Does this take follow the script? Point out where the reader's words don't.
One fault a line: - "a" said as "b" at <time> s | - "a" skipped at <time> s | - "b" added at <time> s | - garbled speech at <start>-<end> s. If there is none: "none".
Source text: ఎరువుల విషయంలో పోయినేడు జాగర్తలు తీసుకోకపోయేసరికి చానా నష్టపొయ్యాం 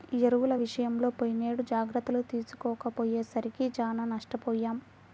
none